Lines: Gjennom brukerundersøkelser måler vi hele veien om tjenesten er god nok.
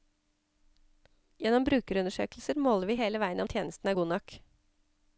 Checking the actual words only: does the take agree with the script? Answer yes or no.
yes